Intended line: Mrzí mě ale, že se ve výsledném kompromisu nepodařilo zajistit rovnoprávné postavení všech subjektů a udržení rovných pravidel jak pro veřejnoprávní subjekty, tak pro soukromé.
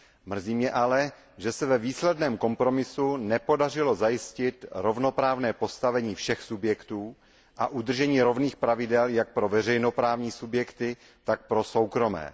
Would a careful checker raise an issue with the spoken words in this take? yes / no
no